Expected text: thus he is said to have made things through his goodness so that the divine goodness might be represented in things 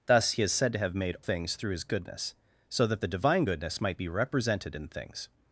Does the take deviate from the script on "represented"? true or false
false